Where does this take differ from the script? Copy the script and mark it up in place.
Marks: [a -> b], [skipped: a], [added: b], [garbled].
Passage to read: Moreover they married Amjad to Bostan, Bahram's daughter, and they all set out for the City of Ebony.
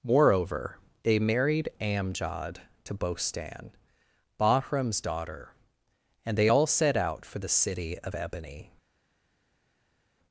Moreover they married Amjad to Bostan, Bahram's daughter, and they all set out for the City of Ebony.